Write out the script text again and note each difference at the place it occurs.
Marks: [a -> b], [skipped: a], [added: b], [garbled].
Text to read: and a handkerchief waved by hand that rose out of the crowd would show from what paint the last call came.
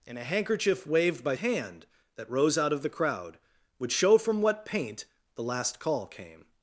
and a handkerchief waved by hand that rose out of the crowd would show from what paint the last call came.